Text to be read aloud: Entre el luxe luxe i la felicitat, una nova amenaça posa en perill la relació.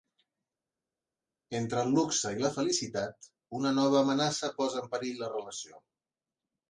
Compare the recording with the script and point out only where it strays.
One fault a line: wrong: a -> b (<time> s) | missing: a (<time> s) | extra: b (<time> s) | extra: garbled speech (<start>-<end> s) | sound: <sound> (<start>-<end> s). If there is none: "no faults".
missing: luxe (2.3 s)